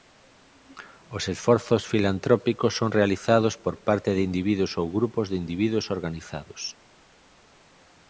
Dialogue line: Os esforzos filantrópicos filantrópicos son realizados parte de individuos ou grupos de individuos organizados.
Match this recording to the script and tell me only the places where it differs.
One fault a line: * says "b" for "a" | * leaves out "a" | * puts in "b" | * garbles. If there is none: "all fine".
* leaves out "filantrópicos"
* puts in "por"